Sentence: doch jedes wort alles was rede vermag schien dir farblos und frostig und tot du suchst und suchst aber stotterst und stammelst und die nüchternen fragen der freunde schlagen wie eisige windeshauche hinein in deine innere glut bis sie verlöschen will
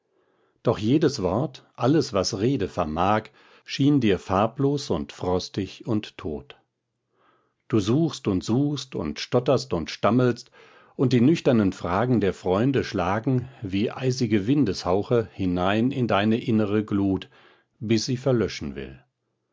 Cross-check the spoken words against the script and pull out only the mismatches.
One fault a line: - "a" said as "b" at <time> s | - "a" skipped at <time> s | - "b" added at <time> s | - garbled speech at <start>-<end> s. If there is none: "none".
- "aber" said as "und" at 9.0 s